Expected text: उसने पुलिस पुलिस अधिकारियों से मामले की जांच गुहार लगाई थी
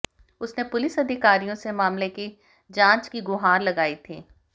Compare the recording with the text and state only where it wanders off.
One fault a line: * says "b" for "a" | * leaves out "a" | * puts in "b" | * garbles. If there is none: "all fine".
* leaves out "पुलिस"
* puts in "की"